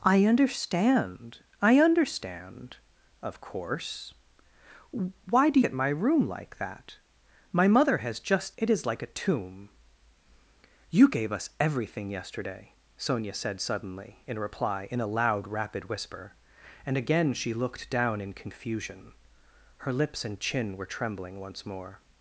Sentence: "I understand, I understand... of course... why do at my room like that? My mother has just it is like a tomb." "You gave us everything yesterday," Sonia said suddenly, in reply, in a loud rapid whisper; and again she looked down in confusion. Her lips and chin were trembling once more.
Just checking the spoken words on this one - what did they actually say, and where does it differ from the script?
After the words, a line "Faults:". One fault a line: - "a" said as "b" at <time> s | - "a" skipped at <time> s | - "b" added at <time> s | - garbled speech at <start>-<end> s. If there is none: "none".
"I understand, I understand... of course... why do at my room like that? My mother has just it is like a tomb." "You gave us everything yesterday," Sonia said suddenly, in reply, in a loud rapid whisper; and again she looked down in confusion. Her lips and chin were trembling once more.
Faults:
none